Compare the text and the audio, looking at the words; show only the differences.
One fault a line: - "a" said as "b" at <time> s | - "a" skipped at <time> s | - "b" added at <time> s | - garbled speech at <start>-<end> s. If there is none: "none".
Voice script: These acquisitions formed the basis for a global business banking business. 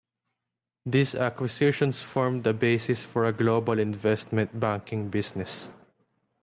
- "business" said as "investment" at 3.8 s